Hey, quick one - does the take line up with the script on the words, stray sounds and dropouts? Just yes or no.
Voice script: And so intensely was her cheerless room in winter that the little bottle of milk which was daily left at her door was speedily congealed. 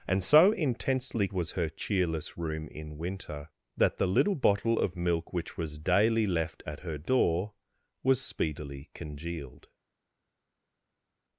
yes